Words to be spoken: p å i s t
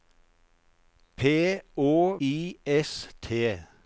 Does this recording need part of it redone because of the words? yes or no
no